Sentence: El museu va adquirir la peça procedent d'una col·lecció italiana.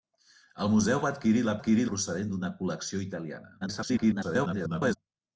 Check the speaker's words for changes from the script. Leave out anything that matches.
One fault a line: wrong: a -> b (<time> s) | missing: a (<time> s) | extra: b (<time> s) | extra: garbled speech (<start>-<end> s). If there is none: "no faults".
wrong: peça -> adquirir (1.6 s)
extra: garbled speech (3.6-5.0 s)